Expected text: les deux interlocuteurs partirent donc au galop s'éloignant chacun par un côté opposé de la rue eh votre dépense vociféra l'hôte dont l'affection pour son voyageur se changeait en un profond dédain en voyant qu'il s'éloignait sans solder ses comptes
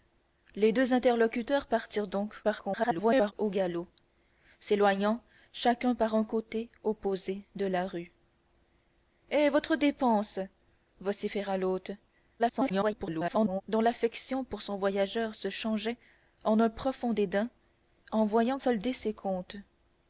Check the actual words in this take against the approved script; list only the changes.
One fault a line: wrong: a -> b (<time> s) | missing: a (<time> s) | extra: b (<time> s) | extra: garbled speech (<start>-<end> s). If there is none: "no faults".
extra: garbled speech (2.4-3.3 s)
extra: garbled speech (12.4-13.6 s)
missing: qu'il s'éloignait sans (18.6 s)